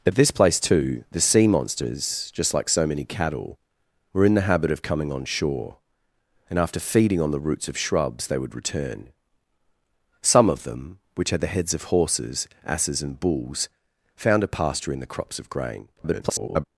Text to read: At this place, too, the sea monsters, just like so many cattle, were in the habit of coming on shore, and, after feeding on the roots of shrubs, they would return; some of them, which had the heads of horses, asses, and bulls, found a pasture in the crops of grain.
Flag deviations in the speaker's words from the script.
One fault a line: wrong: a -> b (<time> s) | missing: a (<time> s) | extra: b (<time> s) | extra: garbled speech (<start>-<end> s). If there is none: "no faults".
extra: garbled speech (16.0-16.6 s)